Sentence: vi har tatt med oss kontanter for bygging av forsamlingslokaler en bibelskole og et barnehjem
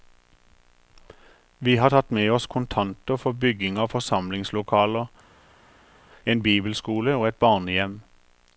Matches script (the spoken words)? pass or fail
pass